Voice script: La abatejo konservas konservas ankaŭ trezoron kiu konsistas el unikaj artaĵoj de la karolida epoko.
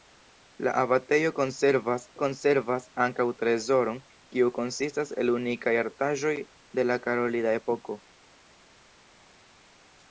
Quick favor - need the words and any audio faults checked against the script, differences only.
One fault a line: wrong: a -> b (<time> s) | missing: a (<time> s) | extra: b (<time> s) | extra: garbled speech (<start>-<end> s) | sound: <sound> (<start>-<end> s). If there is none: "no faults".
no faults